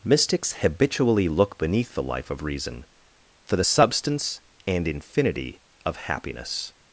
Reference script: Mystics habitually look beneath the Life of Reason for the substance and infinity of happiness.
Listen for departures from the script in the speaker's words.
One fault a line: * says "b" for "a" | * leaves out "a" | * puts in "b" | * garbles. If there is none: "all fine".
all fine